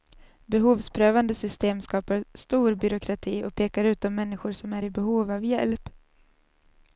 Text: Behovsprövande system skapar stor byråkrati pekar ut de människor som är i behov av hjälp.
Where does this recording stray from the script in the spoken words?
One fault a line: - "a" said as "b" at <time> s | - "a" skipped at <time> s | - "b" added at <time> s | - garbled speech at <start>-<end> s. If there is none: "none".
- "och" added at 3.4 s